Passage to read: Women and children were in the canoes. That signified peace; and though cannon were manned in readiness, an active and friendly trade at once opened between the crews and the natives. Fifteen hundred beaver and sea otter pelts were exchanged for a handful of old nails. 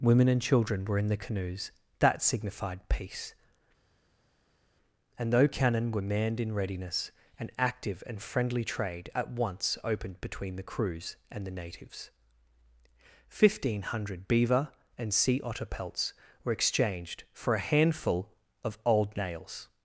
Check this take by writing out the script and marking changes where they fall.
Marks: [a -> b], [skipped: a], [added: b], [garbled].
Women and children were in the canoes. That signified peace; and though cannon were manned in readiness, an active and friendly trade at once opened between the crews and the natives. Fifteen hundred beaver and sea otter pelts were exchanged for a handful of old nails.